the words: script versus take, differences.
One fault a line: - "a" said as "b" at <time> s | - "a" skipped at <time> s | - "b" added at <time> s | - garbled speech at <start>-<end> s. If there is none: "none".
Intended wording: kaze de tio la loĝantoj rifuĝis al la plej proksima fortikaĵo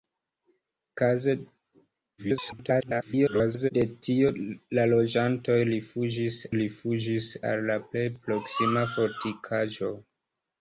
- garbled speech at 2.2-3.7 s
- "rifuĝis" added at 6.6 s